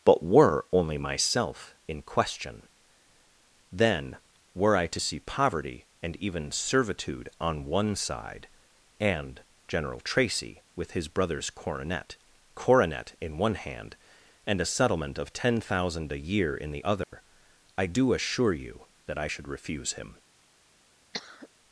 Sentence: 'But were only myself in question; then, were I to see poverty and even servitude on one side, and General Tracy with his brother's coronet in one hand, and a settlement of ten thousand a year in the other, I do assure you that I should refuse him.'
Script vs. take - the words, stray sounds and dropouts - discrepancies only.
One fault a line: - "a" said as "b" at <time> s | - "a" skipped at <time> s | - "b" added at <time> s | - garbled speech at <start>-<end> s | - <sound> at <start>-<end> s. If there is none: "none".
- "coronet" added at 12.5 s
- dropout at 17.0-17.1 s
- cough at 21.1-21.5 s